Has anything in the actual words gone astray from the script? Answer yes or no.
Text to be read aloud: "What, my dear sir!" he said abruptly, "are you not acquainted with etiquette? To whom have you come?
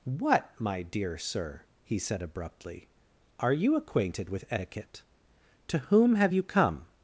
yes